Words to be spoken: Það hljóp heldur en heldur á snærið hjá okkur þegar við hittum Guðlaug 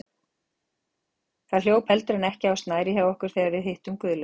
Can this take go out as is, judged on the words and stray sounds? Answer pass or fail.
fail